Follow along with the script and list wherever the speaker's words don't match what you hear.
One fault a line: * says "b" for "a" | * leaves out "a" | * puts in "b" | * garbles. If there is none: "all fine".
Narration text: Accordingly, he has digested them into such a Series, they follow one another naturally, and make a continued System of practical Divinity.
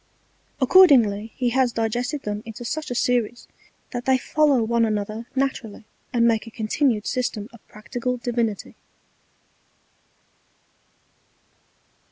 * puts in "that"